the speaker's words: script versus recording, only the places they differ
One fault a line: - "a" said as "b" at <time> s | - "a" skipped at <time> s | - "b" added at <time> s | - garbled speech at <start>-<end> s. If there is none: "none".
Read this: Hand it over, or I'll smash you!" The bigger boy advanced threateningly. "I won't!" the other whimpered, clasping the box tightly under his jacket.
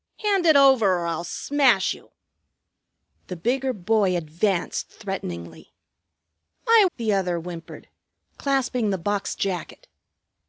- "won't" skipped at 6.9 s
- "tightly under his" skipped at 9.4 s